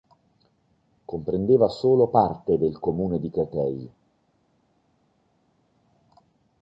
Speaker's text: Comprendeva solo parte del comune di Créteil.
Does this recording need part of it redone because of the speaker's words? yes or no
no